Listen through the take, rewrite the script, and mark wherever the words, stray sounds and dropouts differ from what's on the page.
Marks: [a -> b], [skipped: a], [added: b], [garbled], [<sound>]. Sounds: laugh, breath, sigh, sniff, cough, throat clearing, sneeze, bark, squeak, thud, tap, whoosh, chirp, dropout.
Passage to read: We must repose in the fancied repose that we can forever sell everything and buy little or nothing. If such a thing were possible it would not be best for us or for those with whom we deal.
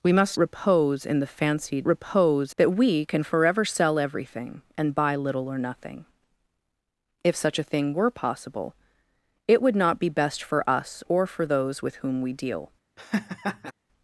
We must repose in the fancied repose that we can forever sell everything and buy little or nothing. If such a thing were possible it would not be best for us or for those with whom we deal. [laugh]